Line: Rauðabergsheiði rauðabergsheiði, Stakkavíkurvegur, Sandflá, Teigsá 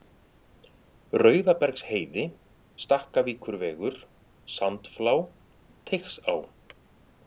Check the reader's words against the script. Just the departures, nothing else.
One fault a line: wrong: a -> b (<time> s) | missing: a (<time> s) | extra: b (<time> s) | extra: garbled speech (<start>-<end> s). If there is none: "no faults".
missing: rauðabergsheiði (2.2 s)